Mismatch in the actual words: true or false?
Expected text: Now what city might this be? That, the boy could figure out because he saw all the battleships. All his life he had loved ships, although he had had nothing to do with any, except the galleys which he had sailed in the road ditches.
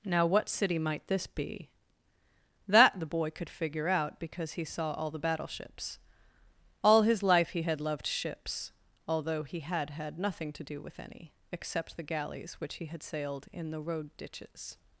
false